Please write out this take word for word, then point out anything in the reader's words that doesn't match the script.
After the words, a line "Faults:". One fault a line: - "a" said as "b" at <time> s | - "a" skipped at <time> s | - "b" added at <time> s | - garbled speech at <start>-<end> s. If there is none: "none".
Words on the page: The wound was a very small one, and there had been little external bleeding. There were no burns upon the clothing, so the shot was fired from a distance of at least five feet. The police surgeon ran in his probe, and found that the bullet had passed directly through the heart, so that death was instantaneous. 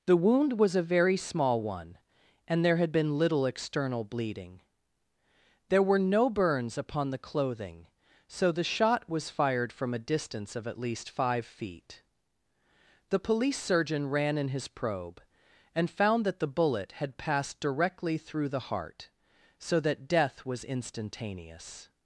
The wound was a very small one, and there had been little external bleeding. There were no burns upon the clothing, so the shot was fired from a distance of at least five feet. The police surgeon ran in his probe, and found that the bullet had passed directly through the heart, so that death was instantaneous.
Faults:
none